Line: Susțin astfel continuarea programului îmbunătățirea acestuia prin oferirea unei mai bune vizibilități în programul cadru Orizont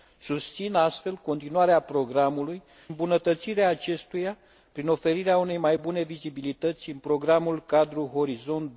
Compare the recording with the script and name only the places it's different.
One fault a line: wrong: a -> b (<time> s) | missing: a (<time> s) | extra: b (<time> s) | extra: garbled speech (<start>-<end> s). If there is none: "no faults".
no faults